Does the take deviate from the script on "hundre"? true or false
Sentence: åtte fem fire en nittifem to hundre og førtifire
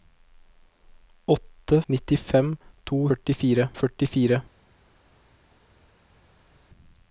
true